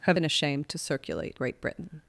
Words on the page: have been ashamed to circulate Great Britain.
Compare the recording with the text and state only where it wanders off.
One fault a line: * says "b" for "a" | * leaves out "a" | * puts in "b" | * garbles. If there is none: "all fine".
all fine